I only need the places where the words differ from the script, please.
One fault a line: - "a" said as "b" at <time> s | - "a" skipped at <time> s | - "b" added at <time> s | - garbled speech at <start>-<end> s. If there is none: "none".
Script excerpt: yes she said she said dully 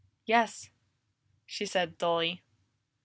- "she said" skipped at 2.0 s